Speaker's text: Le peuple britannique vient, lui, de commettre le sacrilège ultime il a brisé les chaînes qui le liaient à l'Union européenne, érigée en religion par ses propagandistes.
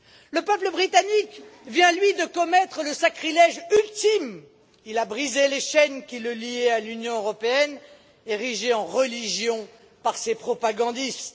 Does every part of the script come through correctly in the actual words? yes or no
yes